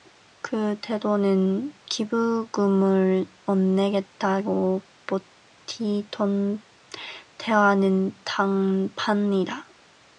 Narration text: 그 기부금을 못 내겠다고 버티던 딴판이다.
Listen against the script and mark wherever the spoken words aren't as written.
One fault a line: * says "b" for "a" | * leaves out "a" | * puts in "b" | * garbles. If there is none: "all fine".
* puts in "태도는"
* puts in "때와는"